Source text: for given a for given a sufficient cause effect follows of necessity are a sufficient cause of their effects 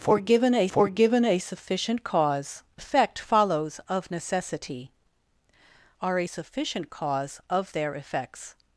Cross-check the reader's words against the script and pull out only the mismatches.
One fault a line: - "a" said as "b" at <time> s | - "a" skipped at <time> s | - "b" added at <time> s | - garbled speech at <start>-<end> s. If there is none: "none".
none